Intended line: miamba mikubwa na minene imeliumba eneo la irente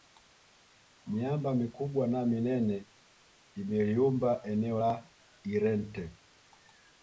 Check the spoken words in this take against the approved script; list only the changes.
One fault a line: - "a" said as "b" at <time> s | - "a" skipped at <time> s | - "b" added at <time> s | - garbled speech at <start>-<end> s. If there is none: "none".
none